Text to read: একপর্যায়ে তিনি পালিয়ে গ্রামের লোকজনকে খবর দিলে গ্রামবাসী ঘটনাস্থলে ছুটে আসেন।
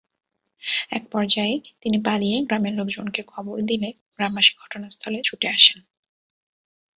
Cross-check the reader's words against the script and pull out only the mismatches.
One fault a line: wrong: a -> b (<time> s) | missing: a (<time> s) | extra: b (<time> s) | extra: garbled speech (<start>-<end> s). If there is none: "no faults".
no faults